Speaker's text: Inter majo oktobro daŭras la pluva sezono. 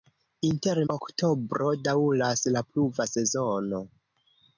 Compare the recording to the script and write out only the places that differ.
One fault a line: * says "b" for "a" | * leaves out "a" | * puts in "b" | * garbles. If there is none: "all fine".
* leaves out "majo"